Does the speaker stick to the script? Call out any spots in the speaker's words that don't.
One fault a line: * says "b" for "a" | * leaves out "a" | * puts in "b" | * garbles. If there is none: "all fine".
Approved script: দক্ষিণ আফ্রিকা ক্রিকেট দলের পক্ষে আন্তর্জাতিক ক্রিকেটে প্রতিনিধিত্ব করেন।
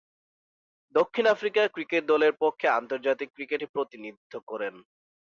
all fine